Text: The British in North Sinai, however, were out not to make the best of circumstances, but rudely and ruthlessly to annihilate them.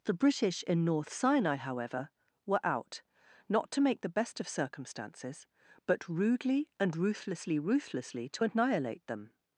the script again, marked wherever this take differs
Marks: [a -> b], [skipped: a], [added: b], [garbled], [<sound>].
The British in North Sinai, however, were out not to make the best of circumstances, but rudely and ruthlessly [added: ruthlessly] to annihilate them.